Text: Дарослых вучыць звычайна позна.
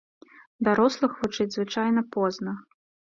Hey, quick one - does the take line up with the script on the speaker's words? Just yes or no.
yes